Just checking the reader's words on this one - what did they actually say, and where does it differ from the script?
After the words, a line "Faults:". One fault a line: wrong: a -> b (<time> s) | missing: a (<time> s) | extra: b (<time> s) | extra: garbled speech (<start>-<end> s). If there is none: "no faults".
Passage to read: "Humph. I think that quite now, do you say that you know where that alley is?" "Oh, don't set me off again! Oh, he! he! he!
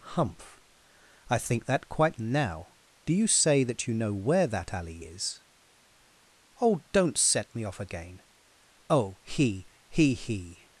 "Humph. I think that quite now, do you say that you know where that alley is?" "Oh, don't set me off again! Oh, he! he! he!
Faults:
no faults